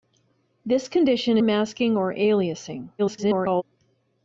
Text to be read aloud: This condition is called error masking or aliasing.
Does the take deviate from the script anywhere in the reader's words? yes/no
yes